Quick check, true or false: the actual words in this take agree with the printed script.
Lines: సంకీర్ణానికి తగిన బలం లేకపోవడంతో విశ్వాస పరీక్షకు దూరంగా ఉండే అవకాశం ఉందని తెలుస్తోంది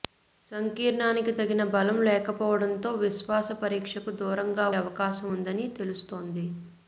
false